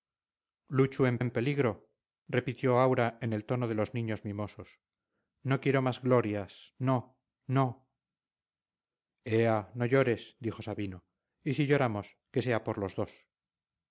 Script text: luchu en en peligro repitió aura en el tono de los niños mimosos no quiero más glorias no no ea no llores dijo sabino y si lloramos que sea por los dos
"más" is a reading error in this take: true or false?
false